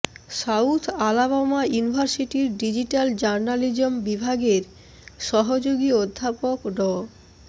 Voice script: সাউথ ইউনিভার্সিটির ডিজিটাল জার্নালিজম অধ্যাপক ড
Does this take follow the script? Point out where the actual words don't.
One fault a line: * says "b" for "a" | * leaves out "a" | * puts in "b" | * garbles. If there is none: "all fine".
* puts in "আলাবামা"
* puts in "বিভাগের সহযোগী"